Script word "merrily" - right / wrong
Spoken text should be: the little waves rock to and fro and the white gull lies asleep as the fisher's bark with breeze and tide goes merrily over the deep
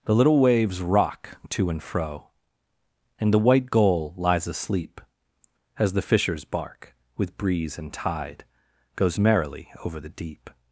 right